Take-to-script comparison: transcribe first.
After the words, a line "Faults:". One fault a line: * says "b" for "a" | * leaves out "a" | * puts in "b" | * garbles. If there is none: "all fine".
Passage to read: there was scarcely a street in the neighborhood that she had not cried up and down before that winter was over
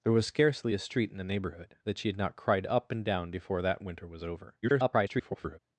there was scarcely a street in the neighborhood that she had not cried up and down before that winter was over [garbled]
Faults:
* garbles